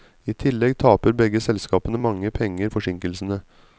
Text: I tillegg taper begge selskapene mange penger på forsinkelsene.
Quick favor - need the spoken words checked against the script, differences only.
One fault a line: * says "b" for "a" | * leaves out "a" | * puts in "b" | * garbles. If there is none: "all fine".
* leaves out "på"